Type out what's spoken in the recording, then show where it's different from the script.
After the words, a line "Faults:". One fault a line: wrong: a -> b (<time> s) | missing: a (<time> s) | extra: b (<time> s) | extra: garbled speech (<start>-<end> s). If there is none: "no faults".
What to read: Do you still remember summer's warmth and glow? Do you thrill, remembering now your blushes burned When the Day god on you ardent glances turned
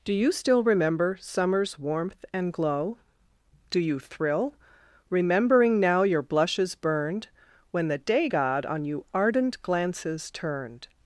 Do you still remember summer's warmth and glow? Do you thrill, remembering now your blushes burned When the Day god on you ardent glances turned
Faults:
no faults